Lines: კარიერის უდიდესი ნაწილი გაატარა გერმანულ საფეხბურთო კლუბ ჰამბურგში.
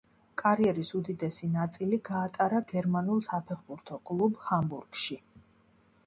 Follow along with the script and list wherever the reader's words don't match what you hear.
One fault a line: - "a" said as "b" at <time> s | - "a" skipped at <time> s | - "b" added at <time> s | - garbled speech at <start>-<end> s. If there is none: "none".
none